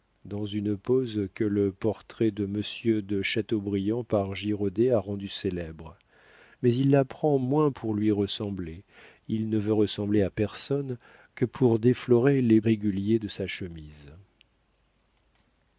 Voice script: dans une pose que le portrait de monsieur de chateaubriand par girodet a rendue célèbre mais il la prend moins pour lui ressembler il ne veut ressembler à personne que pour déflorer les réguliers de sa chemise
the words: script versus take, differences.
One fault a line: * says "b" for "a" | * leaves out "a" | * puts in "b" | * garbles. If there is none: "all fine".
all fine